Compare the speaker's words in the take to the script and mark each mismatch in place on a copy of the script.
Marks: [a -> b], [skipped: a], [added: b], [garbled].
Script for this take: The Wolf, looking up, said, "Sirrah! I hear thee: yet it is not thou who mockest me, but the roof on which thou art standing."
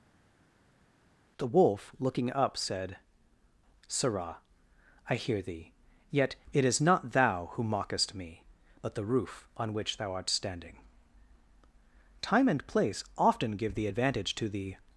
The Wolf, looking up, said, "Sirrah! I hear thee: yet it is not thou who mockest me, but the roof on which thou art standing." [added: Time and place often give the advantage to the]